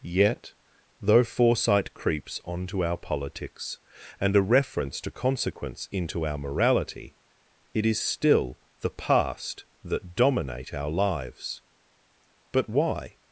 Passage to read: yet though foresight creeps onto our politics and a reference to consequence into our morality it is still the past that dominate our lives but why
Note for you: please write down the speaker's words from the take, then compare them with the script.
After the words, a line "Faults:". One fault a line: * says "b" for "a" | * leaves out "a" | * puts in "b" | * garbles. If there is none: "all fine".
yet though foresight creeps onto our politics and a reference to consequence into our morality it is still the past that dominate our lives but why
Faults:
all fine